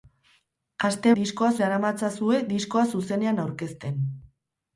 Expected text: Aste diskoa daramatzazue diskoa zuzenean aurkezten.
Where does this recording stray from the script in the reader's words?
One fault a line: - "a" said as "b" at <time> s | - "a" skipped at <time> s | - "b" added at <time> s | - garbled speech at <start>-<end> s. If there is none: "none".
none